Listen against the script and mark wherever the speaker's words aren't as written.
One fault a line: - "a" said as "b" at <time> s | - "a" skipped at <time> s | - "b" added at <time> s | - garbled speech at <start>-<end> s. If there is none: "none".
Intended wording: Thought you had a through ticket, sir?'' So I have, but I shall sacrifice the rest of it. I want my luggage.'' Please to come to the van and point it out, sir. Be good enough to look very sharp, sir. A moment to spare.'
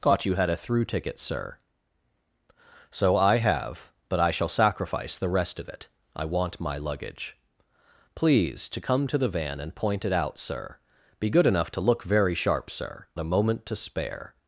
none